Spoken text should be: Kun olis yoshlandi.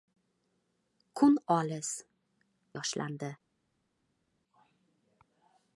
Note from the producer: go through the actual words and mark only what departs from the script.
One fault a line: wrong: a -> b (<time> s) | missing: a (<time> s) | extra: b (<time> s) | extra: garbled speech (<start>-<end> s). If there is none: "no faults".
no faults